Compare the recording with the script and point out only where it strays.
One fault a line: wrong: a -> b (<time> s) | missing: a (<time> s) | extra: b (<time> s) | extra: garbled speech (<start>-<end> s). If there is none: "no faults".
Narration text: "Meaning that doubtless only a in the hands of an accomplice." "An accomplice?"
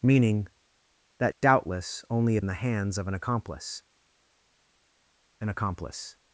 no faults